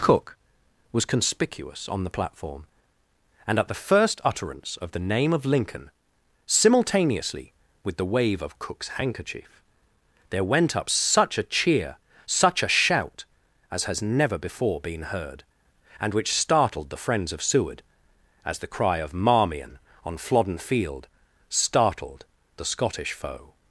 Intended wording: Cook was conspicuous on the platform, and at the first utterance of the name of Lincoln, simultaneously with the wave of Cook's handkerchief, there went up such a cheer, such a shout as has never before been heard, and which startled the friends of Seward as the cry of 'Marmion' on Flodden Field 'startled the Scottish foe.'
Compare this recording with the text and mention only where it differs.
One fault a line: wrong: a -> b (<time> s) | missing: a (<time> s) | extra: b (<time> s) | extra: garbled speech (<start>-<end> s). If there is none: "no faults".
no faults